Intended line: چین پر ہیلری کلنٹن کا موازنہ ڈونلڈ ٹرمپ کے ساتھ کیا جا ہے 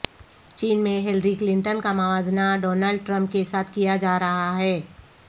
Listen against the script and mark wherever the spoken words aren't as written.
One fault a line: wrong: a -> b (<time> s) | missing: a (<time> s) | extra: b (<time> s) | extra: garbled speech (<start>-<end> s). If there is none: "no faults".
wrong: پر -> میں (0.8 s)
extra: رہا (4.2 s)